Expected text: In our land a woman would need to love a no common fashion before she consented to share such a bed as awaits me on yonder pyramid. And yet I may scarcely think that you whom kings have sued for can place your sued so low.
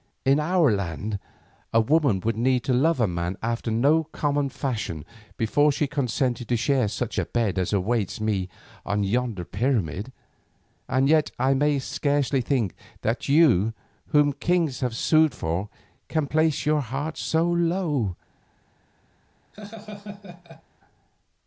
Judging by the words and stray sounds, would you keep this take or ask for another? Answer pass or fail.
fail